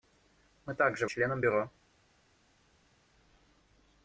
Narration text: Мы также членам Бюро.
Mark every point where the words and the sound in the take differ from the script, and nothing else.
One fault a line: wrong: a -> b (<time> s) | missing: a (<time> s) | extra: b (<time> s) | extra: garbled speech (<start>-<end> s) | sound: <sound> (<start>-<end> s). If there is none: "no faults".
no faults